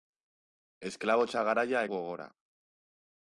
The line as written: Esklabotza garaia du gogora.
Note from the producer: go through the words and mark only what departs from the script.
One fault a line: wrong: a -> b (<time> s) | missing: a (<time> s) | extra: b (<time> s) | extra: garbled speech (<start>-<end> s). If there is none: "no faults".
no faults